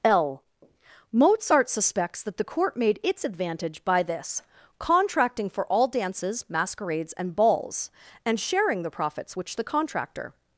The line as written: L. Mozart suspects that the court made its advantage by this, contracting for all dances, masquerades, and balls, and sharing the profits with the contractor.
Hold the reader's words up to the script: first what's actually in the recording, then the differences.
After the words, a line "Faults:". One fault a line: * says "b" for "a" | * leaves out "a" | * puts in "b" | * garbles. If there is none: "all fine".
L. Mozart suspects that the court made its advantage by this, contracting for all dances, masquerades, and balls, and sharing the profits which the contractor.
Faults:
* says "which" for "with"